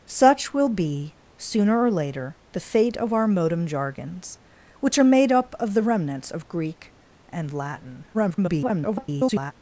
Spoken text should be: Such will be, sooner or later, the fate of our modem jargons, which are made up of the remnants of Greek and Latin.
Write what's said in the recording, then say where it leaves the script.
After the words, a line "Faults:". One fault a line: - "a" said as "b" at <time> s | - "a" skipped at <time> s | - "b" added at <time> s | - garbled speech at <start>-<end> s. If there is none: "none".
Such will be, sooner or later, the fate of our modem jargons, which are made up of the remnants of Greek and Latin. [garbled]
Faults:
- garbled speech at 8.1-9.5 s